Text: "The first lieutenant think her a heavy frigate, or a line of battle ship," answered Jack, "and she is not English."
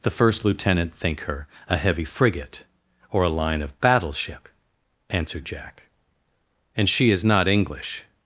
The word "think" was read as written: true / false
true